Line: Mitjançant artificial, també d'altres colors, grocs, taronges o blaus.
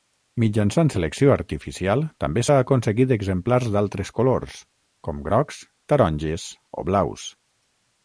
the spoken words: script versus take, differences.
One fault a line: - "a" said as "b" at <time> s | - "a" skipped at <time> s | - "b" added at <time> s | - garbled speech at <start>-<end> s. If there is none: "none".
- "selecció" added at 0.9 s
- "s'ha aconseguit exemplars" added at 2.4 s
- "com" added at 5.1 s